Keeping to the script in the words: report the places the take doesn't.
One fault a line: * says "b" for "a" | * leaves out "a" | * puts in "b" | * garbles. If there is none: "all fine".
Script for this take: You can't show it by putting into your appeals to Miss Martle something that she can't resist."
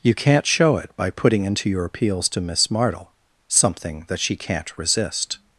all fine